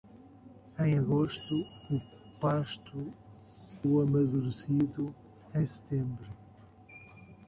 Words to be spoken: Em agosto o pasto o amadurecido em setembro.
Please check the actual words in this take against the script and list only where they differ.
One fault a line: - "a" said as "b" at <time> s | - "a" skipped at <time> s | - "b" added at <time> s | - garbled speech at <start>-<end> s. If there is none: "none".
none